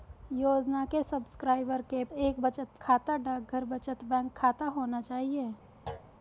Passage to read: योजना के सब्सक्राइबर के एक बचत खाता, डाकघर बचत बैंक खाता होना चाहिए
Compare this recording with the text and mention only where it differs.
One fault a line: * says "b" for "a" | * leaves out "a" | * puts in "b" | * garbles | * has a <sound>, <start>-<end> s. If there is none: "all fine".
* has a thud, 5.9-6.1 s